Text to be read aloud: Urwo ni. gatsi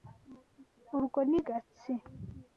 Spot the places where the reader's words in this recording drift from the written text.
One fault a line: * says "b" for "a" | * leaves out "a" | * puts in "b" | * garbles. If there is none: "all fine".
all fine